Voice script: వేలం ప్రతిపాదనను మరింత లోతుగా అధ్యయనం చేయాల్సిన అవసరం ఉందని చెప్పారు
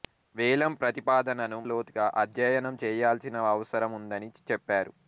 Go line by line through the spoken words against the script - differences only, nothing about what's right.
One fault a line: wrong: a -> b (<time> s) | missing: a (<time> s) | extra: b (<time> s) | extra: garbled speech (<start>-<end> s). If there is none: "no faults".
missing: మరింత (1.6 s)